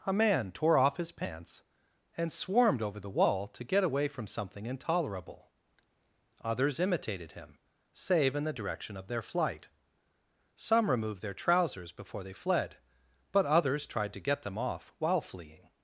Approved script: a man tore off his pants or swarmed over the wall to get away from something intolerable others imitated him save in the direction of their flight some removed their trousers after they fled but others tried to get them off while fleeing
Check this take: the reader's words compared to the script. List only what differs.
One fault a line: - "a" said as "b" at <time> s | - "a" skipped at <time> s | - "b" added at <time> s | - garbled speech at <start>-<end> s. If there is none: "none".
- "or" said as "and" at 2.2 s
- "after" said as "before" at 11.9 s